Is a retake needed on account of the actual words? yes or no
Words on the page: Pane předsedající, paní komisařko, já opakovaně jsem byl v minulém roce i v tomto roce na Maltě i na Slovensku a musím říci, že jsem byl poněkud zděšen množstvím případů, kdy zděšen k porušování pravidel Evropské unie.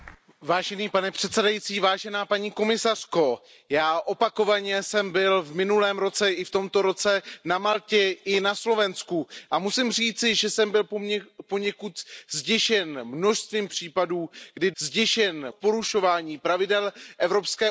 no